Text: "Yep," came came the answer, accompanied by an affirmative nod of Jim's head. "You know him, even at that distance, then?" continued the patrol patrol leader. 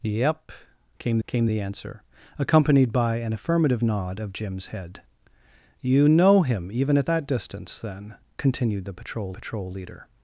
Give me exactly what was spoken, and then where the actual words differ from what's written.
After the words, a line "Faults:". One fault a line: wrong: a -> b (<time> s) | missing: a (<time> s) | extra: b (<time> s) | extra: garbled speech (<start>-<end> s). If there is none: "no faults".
"Yep," came came the answer, accompanied by an affirmative nod of Jim's head. "You know him, even at that distance, then?" continued the patrol patrol leader.
Faults:
no faults